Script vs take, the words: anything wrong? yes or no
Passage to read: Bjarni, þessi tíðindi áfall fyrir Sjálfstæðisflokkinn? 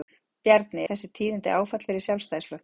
no